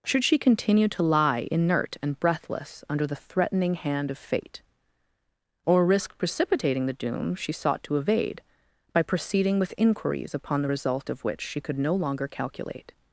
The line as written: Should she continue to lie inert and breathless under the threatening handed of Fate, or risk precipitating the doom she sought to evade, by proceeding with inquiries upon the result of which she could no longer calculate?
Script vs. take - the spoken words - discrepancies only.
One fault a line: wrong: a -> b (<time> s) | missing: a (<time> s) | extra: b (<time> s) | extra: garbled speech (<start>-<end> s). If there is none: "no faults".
wrong: handed -> hand (3.8 s)